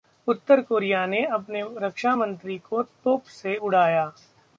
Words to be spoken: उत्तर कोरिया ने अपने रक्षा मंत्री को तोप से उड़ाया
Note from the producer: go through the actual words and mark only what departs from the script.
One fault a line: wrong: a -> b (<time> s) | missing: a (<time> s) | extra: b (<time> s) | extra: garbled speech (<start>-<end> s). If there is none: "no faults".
no faults